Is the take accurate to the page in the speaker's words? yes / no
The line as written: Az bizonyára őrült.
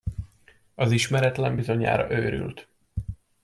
no